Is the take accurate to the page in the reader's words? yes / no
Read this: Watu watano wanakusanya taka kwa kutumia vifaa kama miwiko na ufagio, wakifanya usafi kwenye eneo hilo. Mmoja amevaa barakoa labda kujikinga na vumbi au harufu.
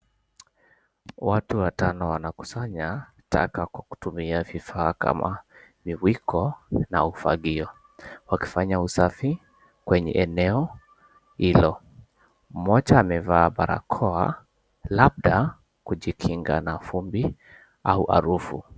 yes